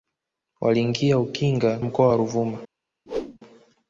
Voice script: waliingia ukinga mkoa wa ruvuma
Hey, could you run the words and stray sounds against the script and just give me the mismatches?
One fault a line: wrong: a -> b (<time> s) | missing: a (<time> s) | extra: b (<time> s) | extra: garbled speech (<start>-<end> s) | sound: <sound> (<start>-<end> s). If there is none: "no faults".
sound: whoosh (3.1-3.4 s)